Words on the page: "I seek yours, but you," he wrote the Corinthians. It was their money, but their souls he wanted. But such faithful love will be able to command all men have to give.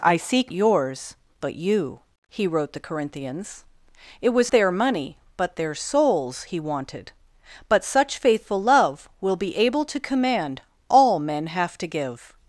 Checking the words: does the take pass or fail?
pass